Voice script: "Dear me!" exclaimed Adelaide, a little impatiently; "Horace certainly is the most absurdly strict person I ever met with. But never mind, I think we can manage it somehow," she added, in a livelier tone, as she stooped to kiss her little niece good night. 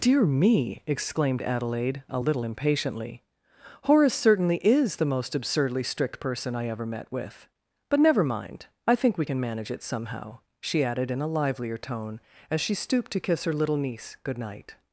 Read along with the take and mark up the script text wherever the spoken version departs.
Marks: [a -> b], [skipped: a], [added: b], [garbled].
"Dear me!" exclaimed Adelaide, a little impatiently; "Horace certainly is the most absurdly strict person I ever met with. But never mind, I think we can manage it somehow," she added, in a livelier tone, as she stooped to kiss her little niece good night.